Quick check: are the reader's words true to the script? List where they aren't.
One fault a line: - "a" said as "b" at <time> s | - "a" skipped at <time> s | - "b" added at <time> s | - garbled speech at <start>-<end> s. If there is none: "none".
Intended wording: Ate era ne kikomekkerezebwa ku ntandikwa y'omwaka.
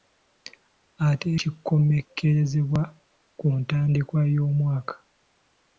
- "era ne" skipped at 1.3 s